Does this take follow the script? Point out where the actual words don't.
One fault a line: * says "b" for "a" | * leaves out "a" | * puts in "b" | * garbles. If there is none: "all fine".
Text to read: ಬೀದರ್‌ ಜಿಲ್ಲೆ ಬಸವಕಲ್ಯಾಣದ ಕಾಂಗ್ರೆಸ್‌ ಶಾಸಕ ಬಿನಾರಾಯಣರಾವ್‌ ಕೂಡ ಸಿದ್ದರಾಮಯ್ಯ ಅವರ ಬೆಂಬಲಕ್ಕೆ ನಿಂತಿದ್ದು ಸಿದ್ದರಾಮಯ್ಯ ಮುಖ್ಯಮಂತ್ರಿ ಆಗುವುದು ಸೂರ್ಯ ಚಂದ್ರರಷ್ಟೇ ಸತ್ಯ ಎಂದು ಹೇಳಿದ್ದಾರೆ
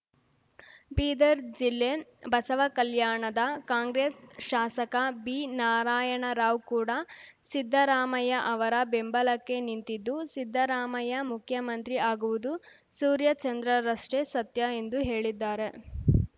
all fine